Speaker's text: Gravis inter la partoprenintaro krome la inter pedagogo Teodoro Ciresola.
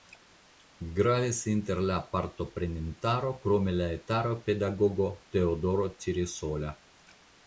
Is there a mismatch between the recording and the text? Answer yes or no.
yes